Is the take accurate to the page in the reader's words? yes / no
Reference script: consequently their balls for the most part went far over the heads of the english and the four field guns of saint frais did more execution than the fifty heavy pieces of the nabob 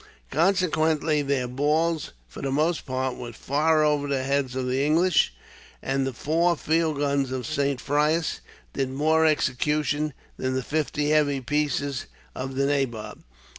yes